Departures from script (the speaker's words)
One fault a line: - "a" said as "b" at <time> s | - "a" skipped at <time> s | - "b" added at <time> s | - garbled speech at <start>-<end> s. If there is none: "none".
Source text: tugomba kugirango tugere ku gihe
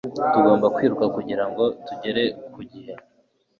- "kwiruka" added at 0.8 s